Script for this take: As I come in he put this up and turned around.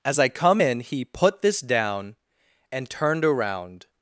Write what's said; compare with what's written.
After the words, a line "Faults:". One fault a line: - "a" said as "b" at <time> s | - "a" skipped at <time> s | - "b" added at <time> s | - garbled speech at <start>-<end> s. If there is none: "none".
As I come in he put this down and turned around.
Faults:
- "up" said as "down" at 1.6 s